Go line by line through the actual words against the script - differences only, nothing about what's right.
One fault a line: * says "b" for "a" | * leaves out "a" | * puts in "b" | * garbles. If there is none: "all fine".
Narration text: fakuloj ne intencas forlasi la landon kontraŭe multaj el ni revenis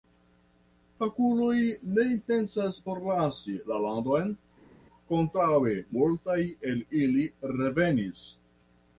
* says "ili" for "ni"